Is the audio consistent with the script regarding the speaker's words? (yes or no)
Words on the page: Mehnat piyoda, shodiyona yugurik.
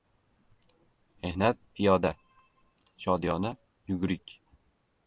yes